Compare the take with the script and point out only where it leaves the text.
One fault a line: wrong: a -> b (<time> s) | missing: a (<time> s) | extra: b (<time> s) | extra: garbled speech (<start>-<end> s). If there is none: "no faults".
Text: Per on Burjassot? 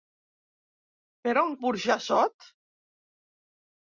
no faults